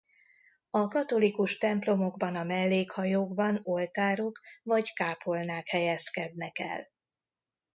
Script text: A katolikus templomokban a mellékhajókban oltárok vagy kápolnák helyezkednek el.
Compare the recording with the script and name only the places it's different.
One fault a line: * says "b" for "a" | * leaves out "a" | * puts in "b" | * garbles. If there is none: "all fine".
all fine